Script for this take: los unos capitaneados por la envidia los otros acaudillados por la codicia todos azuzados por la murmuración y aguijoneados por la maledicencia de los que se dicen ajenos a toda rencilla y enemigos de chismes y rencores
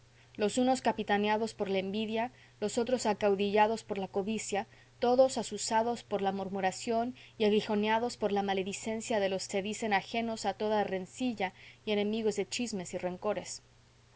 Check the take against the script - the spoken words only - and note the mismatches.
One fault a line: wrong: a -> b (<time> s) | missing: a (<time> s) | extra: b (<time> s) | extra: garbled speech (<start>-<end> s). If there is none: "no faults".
missing: que (9.5 s)